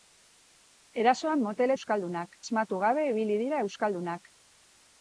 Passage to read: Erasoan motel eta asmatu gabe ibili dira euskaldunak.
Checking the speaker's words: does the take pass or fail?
fail